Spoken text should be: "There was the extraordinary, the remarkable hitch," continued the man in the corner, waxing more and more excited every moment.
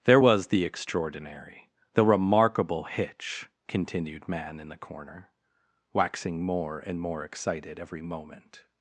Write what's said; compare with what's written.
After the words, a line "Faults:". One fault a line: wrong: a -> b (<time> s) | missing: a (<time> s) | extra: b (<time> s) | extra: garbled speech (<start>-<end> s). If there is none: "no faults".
"There was the extraordinary, the remarkable hitch," continued man in the corner, waxing more and more excited every moment.
Faults:
missing: the (4.3 s)